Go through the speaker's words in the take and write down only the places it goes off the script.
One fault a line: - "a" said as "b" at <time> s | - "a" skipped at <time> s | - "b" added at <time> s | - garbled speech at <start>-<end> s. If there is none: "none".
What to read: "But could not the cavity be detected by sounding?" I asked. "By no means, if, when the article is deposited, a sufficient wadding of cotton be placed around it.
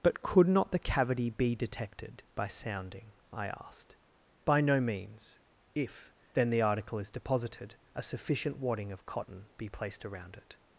- "when" said as "then" at 6.3 s